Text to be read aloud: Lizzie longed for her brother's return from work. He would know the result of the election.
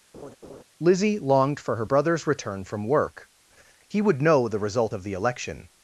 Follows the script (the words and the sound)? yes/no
no